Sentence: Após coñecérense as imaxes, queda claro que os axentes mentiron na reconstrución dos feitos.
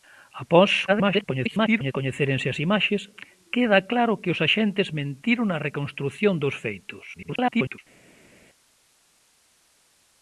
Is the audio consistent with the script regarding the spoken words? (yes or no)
no